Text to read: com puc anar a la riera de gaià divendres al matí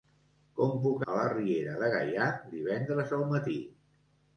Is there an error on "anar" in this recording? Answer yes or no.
yes